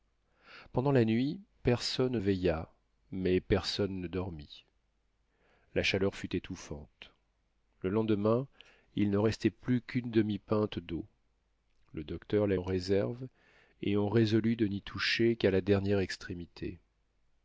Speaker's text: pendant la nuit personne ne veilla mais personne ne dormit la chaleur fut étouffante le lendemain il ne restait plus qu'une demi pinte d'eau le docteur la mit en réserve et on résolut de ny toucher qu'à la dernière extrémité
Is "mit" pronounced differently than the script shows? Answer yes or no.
yes